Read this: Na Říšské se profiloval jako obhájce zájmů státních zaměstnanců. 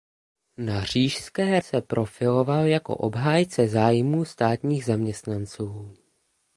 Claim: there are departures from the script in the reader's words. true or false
false